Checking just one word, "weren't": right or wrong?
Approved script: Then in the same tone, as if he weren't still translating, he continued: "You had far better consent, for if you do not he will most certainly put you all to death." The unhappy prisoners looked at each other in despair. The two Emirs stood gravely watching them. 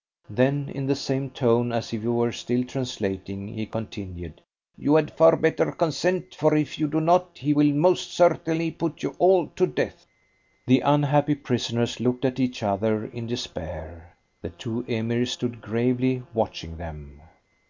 wrong